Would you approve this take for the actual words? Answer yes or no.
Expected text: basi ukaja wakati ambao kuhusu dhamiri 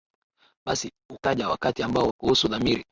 yes